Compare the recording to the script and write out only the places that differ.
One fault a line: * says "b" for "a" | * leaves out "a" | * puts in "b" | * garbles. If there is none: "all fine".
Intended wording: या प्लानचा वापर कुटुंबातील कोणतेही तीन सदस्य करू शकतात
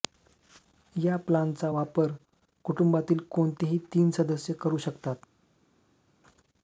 all fine